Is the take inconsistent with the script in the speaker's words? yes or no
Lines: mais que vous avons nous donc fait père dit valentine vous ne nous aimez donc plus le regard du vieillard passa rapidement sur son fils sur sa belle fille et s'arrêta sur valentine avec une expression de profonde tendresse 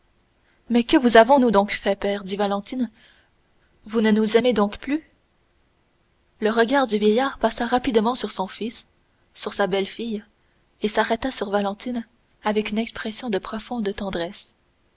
no